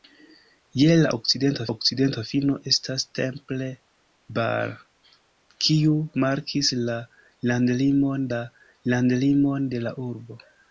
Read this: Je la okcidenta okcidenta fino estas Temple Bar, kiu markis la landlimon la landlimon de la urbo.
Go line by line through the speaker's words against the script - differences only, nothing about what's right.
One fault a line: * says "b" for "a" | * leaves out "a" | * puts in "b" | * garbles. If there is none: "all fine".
all fine